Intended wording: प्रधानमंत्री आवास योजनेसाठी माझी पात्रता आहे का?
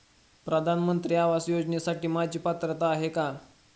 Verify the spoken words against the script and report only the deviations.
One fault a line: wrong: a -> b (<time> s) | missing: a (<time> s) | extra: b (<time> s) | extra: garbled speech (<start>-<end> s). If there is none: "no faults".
no faults